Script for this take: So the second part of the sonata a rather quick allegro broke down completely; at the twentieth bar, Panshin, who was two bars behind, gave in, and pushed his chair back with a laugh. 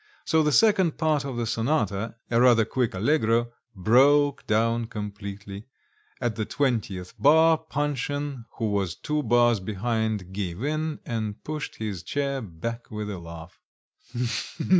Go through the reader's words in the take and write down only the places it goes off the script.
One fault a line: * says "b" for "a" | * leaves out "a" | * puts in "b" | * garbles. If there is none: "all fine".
all fine